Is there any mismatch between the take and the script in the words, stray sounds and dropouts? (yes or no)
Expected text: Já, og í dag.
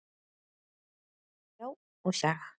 no